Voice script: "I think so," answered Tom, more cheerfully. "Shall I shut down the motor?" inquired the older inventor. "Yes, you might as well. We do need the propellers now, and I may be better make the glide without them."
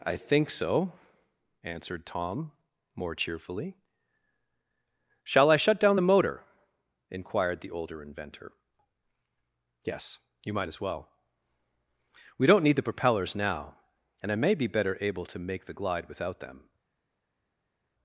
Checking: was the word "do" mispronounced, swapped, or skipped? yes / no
yes